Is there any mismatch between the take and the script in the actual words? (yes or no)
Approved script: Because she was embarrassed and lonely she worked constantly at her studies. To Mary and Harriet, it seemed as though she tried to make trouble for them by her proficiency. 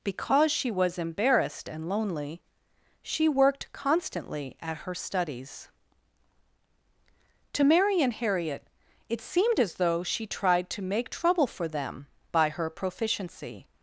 no